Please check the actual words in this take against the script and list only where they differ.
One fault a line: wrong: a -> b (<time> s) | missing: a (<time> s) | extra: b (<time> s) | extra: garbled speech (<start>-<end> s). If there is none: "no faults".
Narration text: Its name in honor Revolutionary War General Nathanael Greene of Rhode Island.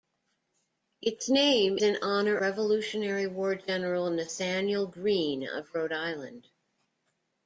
no faults